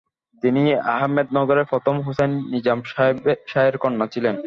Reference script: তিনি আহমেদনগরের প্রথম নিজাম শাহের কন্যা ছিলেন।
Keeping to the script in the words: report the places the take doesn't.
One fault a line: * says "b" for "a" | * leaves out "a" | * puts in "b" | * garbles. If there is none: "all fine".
* puts in "হুসাইন"